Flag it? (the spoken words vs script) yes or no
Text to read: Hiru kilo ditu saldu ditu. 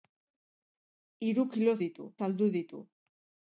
no